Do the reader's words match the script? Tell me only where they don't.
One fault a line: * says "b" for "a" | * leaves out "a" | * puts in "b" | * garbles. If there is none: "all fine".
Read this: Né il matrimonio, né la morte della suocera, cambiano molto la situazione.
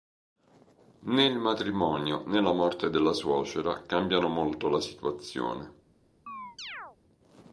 all fine